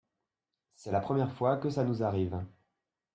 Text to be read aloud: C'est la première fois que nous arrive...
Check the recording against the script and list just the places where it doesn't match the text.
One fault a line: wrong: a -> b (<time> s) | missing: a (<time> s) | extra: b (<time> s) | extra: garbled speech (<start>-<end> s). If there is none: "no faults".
extra: ça (1.7 s)